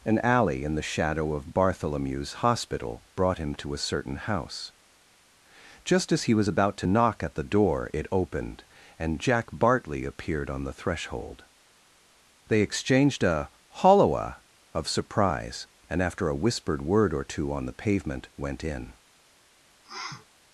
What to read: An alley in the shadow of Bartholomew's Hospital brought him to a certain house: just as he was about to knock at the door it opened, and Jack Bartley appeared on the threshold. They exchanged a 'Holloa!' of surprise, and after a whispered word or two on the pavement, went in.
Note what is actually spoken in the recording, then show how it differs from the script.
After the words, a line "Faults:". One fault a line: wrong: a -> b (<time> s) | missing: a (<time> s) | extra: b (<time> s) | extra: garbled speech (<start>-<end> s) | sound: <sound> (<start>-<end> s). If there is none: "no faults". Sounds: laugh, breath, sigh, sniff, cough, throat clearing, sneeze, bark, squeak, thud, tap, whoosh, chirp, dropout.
An alley in the shadow of Bartholomew's Hospital brought him to a certain house: just as he was about to knock at the door it opened, and Jack Bartley appeared on the threshold. They exchanged a 'Holloa!' of surprise, and after a whispered word or two on the pavement, went in.
Faults:
sound: sniff (19.8-20.3 s)